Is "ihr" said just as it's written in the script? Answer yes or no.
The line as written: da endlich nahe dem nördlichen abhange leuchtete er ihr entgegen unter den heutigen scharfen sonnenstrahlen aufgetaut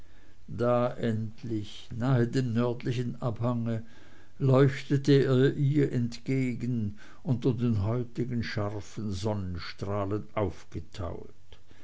yes